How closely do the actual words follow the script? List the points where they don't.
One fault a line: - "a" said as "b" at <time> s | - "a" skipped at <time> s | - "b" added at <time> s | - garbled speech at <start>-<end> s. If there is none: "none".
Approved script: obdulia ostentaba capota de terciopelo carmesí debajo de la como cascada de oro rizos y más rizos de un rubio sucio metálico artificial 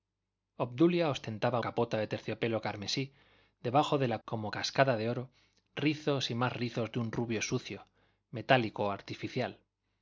none